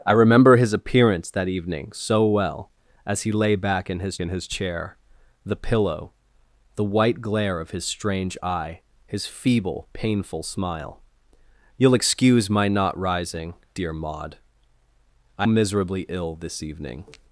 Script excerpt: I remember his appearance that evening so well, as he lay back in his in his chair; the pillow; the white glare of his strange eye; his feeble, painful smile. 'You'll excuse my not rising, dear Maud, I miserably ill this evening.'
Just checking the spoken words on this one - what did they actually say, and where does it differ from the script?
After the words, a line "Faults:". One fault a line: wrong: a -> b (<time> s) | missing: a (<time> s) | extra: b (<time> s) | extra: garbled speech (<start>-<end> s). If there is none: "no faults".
I remember his appearance that evening so well, as he lay back in his in his chair; the pillow; the white glare of his strange eye; his feeble, painful smile. 'You'll excuse my not rising, dear Maud, I miserably ill this evening.'
Faults:
no faults